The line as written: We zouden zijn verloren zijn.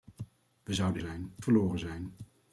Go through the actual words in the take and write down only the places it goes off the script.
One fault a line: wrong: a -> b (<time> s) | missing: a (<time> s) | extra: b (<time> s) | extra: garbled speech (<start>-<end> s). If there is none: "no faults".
no faults